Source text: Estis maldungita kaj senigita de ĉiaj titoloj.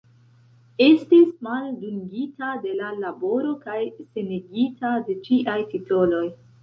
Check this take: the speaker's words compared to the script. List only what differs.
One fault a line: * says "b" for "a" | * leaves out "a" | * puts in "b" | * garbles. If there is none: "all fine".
* puts in "de la laboro"